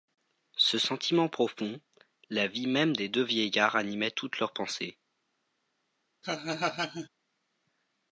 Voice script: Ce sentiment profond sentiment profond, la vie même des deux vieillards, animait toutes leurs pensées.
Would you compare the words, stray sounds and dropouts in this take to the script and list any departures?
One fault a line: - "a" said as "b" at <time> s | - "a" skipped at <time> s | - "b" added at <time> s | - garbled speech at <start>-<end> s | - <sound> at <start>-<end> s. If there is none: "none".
- "sentiment profond" skipped at 1.8 s
- laugh at 6.2-7.1 s